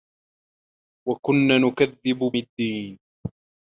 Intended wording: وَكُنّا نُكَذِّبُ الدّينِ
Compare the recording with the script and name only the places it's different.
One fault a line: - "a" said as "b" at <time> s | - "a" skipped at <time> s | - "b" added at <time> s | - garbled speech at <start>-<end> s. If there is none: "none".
none